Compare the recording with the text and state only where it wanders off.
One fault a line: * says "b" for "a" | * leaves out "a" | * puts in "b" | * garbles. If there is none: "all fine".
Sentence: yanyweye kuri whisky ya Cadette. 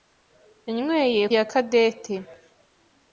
* leaves out "kuri whisky"